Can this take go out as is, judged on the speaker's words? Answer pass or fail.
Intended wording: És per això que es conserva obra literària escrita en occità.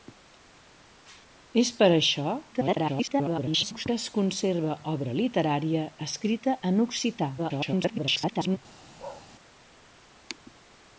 fail